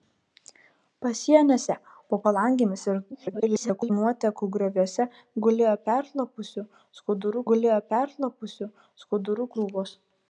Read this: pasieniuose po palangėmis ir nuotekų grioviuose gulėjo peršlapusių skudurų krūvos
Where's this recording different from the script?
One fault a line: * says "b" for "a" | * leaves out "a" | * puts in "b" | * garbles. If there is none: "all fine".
* garbles
* puts in "gulėjo peršlapusių skudurų"